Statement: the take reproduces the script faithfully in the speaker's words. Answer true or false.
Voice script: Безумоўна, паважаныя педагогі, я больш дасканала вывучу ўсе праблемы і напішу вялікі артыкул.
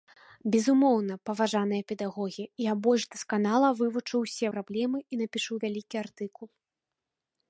true